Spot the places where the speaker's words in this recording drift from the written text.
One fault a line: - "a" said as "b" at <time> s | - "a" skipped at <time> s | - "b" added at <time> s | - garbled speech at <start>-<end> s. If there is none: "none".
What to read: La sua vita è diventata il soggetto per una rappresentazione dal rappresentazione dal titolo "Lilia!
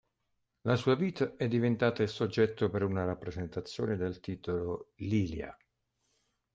- "rappresentazione dal" skipped at 4.2 s